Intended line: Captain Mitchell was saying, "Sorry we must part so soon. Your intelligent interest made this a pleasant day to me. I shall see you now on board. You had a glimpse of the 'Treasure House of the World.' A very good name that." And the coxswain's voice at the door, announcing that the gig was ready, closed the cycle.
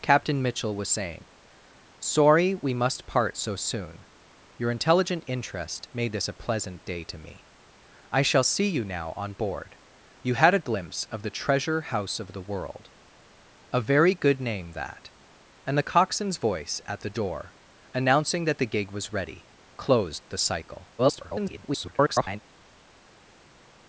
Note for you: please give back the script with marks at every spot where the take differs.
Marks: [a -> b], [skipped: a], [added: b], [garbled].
Captain Mitchell was saying, "Sorry we must part so soon. Your intelligent interest made this a pleasant day to me. I shall see you now on board. You had a glimpse of the 'Treasure House of the World.' A very good name that." And the coxswain's voice at the door, announcing that the gig was ready, closed the cycle. [garbled]